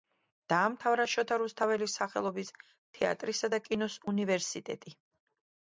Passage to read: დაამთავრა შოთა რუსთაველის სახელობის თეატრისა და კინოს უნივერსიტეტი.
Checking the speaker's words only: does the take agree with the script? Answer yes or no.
yes